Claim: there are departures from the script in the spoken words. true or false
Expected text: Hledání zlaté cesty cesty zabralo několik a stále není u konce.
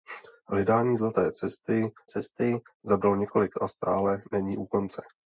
false